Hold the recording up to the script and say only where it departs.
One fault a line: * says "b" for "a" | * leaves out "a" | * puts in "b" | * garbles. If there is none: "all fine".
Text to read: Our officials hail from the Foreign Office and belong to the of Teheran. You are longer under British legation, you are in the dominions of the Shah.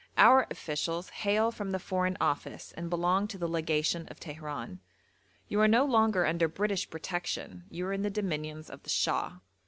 * puts in "legation"
* puts in "no"
* says "protection" for "legation"